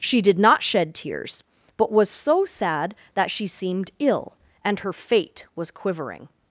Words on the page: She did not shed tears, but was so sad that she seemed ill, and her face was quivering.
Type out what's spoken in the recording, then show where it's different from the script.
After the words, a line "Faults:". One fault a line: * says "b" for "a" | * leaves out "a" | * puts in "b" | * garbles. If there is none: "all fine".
She did not shed tears, but was so sad that she seemed ill, and her fate was quivering.
Faults:
* says "fate" for "face"